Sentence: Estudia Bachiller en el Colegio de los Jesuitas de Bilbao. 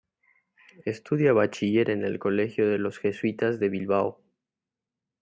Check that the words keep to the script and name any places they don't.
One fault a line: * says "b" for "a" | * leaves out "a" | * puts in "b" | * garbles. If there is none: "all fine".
all fine